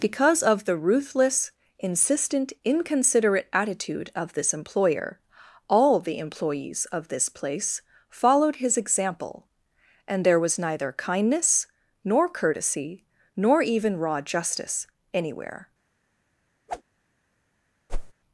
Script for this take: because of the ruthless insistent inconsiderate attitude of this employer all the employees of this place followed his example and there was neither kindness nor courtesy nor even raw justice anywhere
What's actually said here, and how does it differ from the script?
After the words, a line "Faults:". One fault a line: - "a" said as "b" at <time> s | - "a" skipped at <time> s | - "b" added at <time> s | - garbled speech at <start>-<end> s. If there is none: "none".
because of the ruthless insistent inconsiderate attitude of this employer all the employees of this place followed his example and there was neither kindness nor courtesy nor even raw justice anywhere
Faults:
none